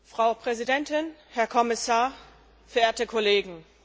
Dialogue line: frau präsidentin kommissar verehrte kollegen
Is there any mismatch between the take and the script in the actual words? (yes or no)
yes